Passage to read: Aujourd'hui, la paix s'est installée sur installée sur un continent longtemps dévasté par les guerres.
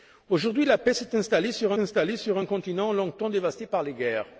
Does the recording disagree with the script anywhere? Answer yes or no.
no